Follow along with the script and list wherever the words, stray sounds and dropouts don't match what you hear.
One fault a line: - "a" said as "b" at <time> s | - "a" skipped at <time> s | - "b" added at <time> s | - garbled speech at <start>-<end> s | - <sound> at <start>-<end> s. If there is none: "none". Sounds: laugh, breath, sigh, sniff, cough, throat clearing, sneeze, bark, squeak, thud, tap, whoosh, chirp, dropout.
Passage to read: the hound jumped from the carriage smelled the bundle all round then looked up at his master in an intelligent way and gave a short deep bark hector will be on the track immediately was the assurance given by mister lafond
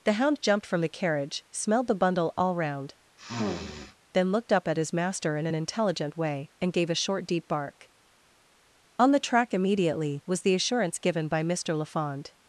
- sniff at 3.2-4.0 s
- "hector will be" skipped at 7.9 s